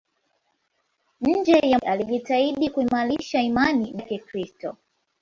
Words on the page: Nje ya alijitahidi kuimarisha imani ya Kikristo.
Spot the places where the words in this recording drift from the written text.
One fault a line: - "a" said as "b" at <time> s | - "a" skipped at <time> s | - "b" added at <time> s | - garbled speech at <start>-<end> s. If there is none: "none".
none